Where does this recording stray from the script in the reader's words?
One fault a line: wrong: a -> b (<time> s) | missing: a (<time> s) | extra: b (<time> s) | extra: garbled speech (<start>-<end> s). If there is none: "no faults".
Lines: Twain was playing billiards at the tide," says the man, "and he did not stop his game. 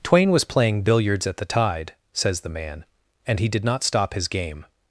no faults